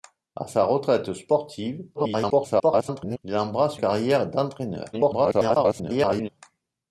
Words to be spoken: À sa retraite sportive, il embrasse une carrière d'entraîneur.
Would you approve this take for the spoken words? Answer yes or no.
no